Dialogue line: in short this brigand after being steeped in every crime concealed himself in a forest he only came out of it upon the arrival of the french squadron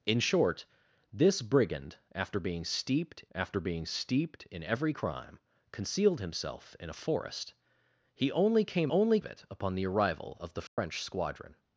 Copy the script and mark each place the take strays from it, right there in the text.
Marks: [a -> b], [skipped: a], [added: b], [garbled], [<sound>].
in short this brigand after being steeped [added: after being steeped] in every crime concealed himself in a forest he only came [out -> only] of it upon the arrival of the french [dropout] squadron